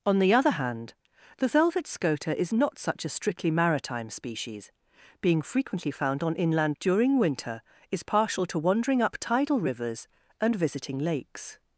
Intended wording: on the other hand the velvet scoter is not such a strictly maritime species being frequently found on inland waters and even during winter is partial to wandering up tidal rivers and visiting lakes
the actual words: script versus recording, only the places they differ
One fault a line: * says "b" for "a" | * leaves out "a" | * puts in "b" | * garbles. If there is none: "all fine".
* leaves out "waters and even"